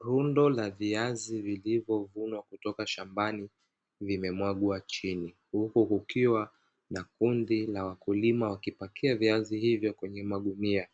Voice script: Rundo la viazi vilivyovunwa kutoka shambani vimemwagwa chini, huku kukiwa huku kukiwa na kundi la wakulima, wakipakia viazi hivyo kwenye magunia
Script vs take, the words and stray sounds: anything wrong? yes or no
yes